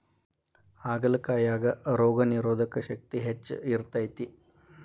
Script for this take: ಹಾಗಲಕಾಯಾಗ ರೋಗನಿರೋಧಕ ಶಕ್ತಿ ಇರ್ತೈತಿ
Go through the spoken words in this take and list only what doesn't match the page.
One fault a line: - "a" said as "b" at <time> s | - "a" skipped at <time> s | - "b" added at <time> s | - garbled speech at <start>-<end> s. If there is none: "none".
- "ಹೆಚ್ಚ" added at 3.2 s